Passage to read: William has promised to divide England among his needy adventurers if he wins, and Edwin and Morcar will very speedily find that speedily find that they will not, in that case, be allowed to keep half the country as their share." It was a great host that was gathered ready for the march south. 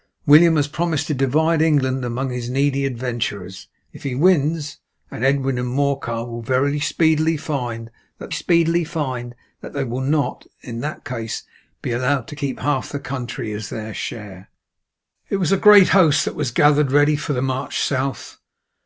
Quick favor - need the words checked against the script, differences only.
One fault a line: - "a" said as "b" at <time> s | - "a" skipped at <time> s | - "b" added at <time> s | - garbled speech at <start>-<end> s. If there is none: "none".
none